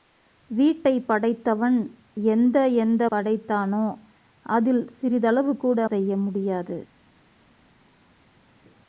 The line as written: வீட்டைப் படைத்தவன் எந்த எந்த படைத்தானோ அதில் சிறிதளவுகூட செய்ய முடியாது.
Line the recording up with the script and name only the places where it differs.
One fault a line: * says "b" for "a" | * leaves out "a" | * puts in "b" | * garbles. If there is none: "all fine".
all fine